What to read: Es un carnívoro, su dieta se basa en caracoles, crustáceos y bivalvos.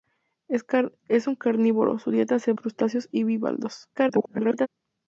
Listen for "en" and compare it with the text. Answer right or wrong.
wrong